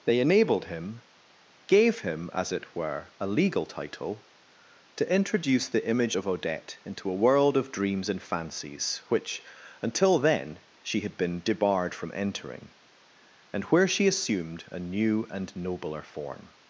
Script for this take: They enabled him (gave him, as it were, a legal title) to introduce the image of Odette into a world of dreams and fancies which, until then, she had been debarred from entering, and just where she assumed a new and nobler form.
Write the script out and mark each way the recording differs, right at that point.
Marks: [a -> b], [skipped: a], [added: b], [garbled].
They enabled him (gave him, as it were, a legal title) to introduce the image of Odette into a world of dreams and fancies which, until then, she had been debarred from entering, and [skipped: just] where she assumed a new and nobler form.